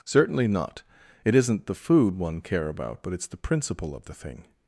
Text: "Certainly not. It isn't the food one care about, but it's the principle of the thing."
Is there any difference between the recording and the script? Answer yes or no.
no